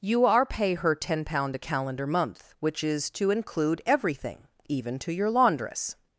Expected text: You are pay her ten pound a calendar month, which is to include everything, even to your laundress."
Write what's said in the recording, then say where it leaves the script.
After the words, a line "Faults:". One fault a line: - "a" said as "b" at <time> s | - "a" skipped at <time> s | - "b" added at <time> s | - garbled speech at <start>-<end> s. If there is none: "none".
You are pay her ten pound a calendar month, which is to include everything, even to your laundress."
Faults:
none